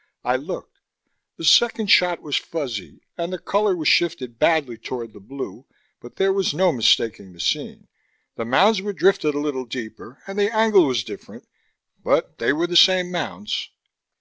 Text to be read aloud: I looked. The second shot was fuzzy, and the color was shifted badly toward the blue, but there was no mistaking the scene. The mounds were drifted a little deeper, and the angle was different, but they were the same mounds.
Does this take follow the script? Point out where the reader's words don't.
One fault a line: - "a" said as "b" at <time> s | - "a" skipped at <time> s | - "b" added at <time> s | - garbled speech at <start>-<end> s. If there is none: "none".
none